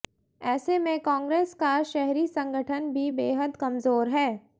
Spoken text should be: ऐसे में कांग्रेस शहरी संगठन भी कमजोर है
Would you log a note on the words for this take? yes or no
yes